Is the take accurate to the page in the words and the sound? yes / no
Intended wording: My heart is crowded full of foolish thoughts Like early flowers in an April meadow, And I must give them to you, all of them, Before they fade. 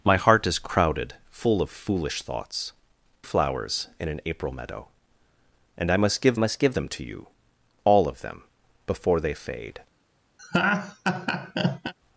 no